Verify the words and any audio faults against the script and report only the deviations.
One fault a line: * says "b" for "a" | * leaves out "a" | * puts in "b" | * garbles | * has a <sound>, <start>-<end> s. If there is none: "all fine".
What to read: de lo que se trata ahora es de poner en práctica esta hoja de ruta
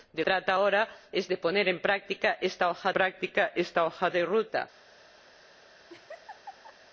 * leaves out "lo que se"
* puts in "práctica esta hoja"
* has a laugh, 5.9-6.8 s